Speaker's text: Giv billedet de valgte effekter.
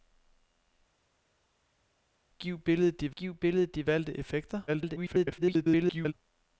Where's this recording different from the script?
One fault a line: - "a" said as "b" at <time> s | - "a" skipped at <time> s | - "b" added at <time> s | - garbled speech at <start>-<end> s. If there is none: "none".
- "giv billedet de" added at 3.2 s
- garbled speech at 4.7-6.1 s